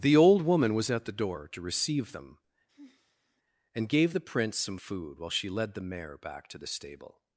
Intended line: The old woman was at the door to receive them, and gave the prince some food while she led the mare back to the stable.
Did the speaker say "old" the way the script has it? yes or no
yes